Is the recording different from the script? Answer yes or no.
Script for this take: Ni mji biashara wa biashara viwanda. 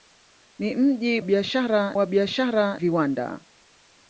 no